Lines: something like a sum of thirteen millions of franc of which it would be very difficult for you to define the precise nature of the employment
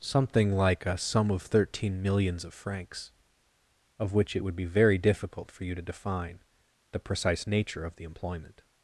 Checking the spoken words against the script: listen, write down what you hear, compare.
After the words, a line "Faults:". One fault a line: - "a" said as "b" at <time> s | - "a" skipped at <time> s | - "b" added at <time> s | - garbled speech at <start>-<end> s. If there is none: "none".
something like a sum of thirteen millions of francs of which it would be very difficult for you to define the precise nature of the employment
Faults:
- "franc" said as "francs" at 2.5 s